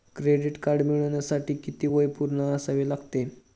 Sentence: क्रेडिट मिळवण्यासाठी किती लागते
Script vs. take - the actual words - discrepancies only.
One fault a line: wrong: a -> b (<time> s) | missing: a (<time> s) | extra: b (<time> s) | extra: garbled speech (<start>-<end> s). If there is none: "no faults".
extra: कार्ड (0.6 s)
extra: वय पूर्ण असावे (1.9 s)